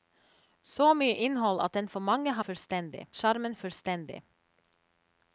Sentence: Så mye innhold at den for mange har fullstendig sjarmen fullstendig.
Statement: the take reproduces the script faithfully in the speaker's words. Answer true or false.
true